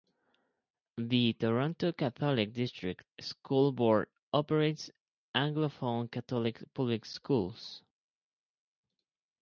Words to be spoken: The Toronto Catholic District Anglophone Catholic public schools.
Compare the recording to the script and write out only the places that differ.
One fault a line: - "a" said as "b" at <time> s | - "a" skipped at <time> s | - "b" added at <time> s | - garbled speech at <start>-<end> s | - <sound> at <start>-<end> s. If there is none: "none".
- "School Board operates" added at 3.2 s